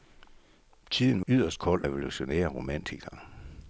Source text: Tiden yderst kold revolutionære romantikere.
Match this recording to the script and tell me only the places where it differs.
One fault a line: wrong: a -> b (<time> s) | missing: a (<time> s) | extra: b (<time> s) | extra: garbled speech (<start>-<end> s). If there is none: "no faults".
no faults